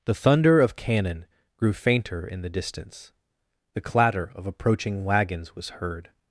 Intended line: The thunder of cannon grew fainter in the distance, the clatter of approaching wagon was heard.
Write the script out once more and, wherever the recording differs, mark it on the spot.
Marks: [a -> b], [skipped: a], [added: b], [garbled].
The thunder of cannon grew fainter in the distance, the clatter of approaching [wagon -> wagons] was heard.